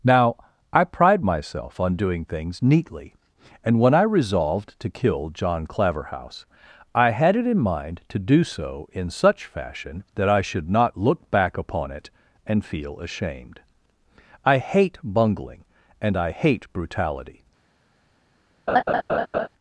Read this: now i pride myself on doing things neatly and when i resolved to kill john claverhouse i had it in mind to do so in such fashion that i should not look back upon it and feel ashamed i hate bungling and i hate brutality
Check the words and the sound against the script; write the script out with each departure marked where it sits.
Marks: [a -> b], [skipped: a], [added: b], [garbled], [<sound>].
now i pride myself on doing things neatly and when i resolved to kill john claverhouse i had it in mind to do so in such fashion that i should not look back upon it and feel ashamed i hate bungling and i hate brutality [laugh]